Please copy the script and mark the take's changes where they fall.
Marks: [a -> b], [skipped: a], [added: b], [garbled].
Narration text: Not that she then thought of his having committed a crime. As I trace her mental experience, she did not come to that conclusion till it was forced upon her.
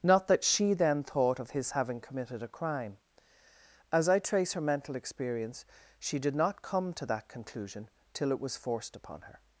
Not that she then thought of his having committed a crime. As I trace her mental experience, she did not come to that conclusion till it was forced upon her.